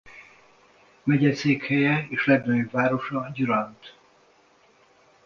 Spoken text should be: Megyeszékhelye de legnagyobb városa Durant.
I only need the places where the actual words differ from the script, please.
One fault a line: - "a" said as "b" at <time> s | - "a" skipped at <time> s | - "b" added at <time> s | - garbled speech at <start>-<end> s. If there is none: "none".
- "de" said as "és" at 2.1 s